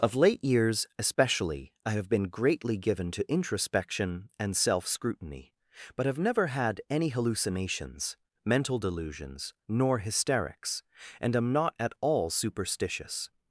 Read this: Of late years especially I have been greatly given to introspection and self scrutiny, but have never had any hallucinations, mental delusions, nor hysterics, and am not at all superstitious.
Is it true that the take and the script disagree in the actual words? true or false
false